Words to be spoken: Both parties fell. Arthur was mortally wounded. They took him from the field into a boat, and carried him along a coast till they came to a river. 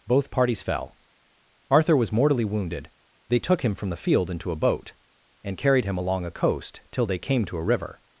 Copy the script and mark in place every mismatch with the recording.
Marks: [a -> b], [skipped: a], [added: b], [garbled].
Both parties fell. Arthur was mortally wounded. They took him from the field into a boat, and carried him along a coast till they came to a river.